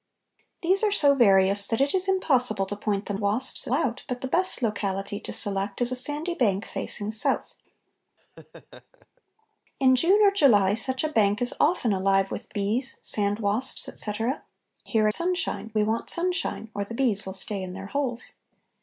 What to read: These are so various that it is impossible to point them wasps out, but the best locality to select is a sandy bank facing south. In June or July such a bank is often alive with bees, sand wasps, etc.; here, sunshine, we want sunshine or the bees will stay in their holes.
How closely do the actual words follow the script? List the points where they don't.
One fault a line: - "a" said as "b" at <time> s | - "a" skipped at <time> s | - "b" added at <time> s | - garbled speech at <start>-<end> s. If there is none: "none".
none